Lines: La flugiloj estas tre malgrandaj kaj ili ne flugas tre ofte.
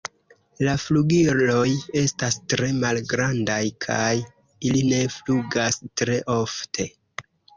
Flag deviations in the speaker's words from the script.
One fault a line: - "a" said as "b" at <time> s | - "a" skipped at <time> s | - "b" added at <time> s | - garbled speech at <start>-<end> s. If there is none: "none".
none